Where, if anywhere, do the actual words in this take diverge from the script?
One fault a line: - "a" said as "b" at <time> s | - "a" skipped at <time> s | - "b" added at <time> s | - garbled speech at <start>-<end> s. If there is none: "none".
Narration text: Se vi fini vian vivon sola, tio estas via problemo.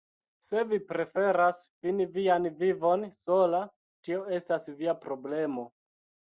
- "preferas" added at 0.9 s